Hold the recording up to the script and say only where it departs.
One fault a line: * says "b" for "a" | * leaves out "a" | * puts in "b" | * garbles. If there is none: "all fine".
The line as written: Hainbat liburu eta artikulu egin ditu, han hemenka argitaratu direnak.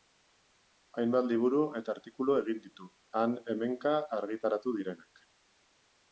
all fine